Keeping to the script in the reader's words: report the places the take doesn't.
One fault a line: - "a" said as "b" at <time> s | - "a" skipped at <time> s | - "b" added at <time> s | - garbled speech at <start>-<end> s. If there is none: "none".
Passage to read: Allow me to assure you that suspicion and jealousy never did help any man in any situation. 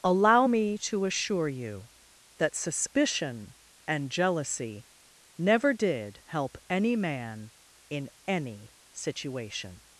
none